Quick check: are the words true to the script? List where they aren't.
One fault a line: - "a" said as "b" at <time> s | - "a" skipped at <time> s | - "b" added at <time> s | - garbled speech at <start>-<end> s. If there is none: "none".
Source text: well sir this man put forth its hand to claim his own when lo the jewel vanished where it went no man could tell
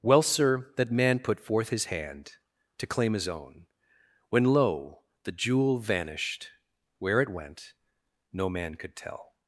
- "this" said as "that" at 0.8 s
- "its" said as "his" at 1.7 s